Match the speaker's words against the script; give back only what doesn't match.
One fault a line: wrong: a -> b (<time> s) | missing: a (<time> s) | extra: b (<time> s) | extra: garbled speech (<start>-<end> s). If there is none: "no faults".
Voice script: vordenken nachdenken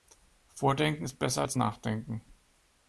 extra: ist besser als (1.0 s)